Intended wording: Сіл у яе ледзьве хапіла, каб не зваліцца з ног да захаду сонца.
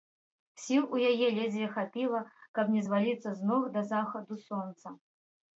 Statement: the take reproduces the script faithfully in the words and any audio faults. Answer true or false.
true